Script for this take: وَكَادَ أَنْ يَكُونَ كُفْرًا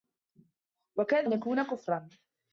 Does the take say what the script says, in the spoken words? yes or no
yes